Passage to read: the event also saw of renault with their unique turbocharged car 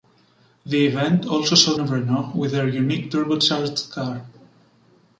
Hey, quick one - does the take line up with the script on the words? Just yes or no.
yes